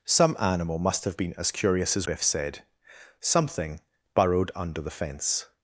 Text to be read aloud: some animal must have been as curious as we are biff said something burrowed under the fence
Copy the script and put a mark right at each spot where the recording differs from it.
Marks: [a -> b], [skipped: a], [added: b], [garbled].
some animal must have been as curious as [skipped: we are] biff said something burrowed under the fence